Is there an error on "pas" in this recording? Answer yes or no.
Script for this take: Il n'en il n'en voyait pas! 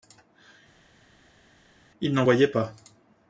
no